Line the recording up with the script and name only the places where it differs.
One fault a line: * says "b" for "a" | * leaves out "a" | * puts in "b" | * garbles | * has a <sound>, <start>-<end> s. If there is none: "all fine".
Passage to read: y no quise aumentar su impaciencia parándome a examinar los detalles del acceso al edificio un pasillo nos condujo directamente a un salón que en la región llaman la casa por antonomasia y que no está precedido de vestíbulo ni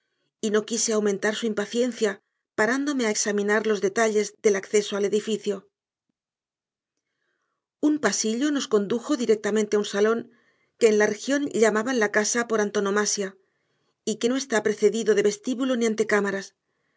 all fine